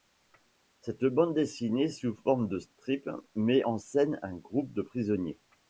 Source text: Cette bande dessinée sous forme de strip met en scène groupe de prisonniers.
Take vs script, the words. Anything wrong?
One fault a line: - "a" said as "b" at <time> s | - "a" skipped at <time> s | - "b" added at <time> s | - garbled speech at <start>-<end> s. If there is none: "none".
- "un" added at 4.2 s